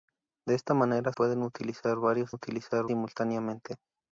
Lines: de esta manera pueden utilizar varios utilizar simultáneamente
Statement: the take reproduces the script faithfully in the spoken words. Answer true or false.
true